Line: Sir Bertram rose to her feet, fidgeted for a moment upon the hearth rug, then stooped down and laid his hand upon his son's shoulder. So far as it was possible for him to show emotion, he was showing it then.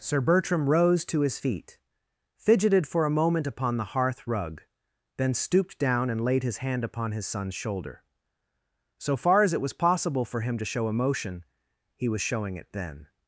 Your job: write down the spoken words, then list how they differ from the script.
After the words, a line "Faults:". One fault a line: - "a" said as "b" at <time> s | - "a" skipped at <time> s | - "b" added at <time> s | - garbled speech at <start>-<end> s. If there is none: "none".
Sir Bertram rose to his feet, fidgeted for a moment upon the hearth rug, then stooped down and laid his hand upon his son's shoulder. So far as it was possible for him to show emotion, he was showing it then.
Faults:
- "her" said as "his" at 1.2 s